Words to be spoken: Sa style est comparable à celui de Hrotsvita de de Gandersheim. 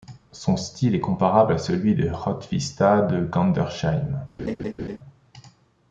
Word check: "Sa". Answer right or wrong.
wrong